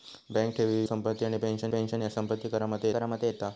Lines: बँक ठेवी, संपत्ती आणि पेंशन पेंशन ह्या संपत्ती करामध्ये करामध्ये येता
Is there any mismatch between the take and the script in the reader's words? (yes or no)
no